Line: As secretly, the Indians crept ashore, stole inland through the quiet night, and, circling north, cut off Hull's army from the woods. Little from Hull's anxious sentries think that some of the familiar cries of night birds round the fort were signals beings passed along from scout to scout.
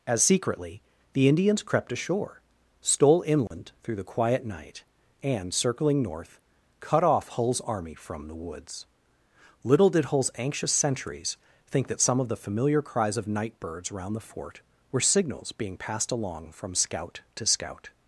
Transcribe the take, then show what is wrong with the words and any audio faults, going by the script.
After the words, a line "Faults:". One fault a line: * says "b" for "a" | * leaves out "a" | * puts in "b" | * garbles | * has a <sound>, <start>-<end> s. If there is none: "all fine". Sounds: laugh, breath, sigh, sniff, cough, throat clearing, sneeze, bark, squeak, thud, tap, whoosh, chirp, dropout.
As secretly, the Indians crept ashore, stole inland through the quiet night, and, circling north, cut off Hull's army from the woods. Little did Hull's anxious sentries think that some of the familiar cries of night birds round the fort were signals being passed along from scout to scout.
Faults:
* has a dropout, 3.5-3.5 s
* says "did" for "from"
* says "being" for "beings"